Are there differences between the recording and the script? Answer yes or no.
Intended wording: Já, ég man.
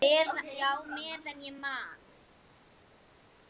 yes